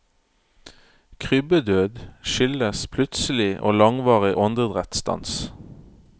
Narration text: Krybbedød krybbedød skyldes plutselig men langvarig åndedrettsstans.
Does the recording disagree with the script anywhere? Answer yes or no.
yes